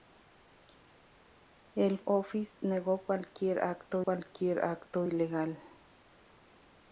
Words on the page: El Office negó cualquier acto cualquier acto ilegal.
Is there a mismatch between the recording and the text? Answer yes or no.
no